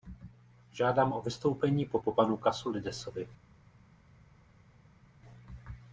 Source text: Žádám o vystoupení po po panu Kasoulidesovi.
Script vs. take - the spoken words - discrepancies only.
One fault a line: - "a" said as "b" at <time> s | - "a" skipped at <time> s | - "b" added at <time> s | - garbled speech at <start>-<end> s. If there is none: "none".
none